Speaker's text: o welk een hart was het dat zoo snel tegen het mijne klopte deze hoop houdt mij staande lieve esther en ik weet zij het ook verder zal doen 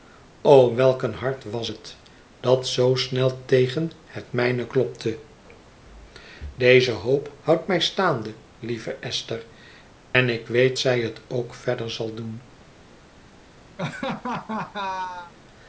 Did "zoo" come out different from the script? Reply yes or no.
no